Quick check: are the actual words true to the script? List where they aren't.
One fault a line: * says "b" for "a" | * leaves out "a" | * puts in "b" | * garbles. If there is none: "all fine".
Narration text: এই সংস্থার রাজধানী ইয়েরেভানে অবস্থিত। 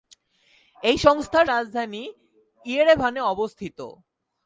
all fine